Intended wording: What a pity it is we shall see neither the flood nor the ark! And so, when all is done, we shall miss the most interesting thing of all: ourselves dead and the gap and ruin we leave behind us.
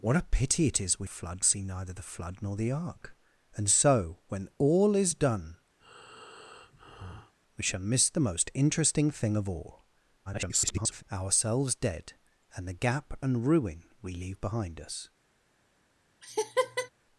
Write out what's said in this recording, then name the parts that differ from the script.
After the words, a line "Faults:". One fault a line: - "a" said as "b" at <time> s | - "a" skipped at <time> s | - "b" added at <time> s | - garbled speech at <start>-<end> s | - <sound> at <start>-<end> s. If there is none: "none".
What a pity it is we flood see neither the flood nor the ark! And so, when all is done, we shall miss the most interesting thing of all: [garbled] ourselves dead and the gap and ruin we leave behind us.
Faults:
- "shall" said as "flood" at 1.1 s
- breath at 5.8-7.3 s
- garbled speech at 10.3-11.0 s
- laugh at 16.2-16.9 s